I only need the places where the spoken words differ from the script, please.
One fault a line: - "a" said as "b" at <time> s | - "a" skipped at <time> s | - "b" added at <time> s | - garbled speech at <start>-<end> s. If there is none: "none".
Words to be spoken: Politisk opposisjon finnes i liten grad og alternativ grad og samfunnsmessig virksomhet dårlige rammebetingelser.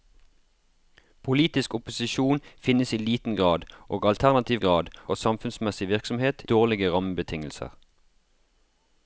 none